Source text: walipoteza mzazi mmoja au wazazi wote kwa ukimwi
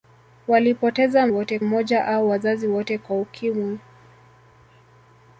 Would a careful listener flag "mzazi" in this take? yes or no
yes